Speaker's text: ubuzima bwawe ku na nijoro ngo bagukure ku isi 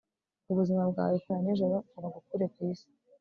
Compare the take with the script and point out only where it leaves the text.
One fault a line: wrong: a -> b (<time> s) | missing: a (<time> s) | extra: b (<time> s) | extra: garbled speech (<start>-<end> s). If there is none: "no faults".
no faults